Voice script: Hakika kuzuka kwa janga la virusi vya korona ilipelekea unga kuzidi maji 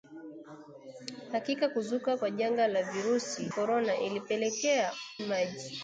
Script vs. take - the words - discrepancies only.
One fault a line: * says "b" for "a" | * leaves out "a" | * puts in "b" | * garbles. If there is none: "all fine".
* leaves out "vya"
* leaves out "unga kuzidi"